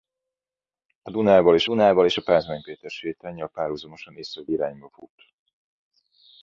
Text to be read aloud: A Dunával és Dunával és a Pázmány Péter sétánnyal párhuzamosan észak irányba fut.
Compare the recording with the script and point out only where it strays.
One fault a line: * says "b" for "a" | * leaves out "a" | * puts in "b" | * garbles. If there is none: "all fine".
all fine